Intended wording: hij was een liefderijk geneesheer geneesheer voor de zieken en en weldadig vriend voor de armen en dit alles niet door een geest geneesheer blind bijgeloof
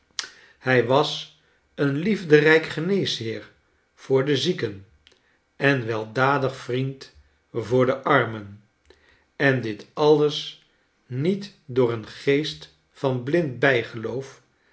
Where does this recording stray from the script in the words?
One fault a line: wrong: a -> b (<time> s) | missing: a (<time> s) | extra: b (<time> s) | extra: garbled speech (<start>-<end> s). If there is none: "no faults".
missing: geneesheer (3.5 s)
missing: en (5.8 s)
wrong: geneesheer -> van (12.9 s)